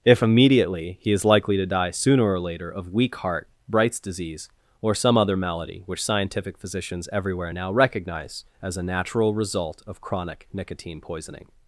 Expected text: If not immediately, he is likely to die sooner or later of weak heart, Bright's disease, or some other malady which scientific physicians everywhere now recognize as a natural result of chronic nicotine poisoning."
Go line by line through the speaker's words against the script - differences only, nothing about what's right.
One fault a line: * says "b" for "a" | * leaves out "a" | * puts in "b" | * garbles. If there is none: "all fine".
* leaves out "not"